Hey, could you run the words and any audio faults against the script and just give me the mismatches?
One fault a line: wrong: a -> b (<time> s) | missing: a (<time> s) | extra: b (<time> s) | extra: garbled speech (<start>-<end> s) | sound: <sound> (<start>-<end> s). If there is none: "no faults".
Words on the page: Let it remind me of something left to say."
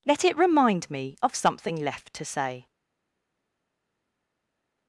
no faults